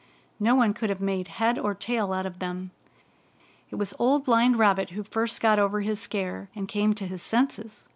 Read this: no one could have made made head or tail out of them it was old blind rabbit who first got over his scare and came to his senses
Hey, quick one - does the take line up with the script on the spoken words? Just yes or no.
no